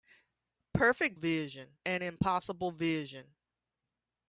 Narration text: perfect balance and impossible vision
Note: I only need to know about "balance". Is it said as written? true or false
false